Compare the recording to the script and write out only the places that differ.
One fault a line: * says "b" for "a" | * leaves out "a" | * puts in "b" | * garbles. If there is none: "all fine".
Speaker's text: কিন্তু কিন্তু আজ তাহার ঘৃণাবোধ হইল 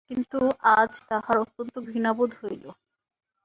* leaves out "কিন্তু"
* puts in "অত্যন্ত"